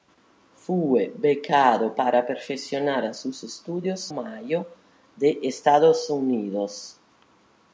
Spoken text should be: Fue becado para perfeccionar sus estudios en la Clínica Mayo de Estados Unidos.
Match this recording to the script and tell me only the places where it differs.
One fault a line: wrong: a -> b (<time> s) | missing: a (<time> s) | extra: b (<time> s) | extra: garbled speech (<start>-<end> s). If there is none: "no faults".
missing: en la Clínica (4.1 s)